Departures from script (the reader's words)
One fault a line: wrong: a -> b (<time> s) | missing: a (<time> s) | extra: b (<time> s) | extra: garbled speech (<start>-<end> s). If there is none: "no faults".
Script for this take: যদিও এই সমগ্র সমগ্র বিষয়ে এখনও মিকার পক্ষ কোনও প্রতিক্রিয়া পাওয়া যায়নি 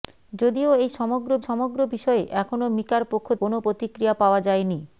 no faults